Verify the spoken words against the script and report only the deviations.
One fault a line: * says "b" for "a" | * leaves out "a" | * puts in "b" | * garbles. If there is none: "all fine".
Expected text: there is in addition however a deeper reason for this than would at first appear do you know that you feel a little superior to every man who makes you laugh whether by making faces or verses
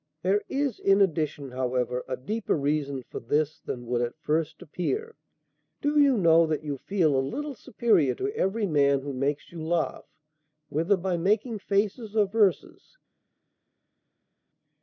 all fine